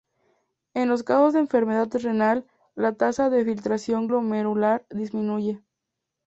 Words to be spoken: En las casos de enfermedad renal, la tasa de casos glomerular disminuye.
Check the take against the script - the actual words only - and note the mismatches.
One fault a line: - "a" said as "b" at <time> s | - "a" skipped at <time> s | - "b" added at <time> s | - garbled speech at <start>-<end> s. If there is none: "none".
- "las" said as "los" at 0.9 s
- "casos" said as "filtración" at 3.5 s